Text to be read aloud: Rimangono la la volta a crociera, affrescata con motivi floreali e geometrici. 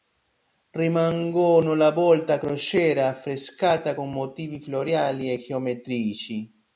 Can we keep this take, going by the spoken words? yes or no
no